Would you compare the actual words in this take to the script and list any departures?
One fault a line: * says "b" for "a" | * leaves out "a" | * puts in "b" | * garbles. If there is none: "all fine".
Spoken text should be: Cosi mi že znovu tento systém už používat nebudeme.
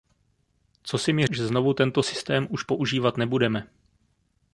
all fine